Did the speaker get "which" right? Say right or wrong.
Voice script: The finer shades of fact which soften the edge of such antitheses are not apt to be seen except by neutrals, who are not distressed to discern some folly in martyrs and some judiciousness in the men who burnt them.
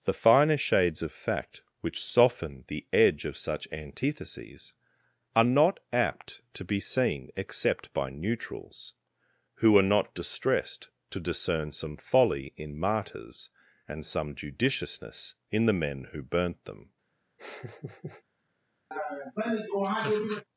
right